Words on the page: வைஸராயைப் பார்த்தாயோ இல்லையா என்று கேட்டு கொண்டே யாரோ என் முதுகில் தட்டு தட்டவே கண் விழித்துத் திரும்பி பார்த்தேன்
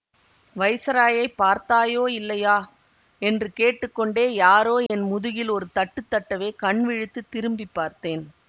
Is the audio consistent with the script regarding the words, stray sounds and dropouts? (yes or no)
no